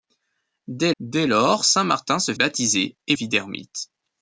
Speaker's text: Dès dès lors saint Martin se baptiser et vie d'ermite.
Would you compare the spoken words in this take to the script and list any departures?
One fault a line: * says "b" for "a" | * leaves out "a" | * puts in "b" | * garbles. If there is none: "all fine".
all fine